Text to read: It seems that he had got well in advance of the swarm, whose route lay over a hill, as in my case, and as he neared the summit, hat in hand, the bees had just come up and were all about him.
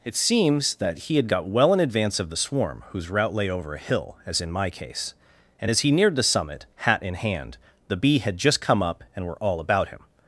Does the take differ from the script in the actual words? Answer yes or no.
yes